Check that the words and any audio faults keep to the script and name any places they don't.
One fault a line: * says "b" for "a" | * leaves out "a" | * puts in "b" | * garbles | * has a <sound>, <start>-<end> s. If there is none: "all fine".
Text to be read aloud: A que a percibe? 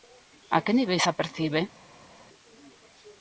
* puts in "niveis"